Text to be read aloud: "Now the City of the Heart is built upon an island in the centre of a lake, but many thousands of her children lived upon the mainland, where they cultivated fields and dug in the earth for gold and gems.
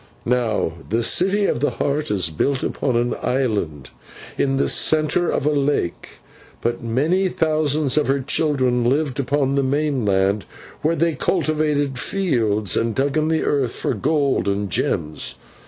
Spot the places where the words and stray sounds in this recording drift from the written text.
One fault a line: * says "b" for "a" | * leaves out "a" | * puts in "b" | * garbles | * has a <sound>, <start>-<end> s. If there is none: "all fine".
all fine